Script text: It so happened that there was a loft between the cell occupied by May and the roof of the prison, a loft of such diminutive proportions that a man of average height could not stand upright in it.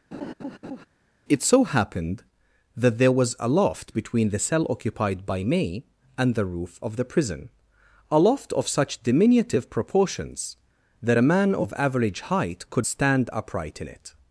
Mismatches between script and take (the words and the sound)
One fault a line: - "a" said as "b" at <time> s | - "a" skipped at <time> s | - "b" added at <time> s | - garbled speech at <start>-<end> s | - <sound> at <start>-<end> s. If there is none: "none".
- laugh at 0.1-0.9 s
- "not" skipped at 12.9 s